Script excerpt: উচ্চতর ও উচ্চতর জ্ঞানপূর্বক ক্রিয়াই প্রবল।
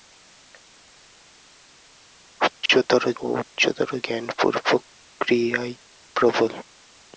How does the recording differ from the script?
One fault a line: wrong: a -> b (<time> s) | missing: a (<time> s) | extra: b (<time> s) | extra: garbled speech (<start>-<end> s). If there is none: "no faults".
no faults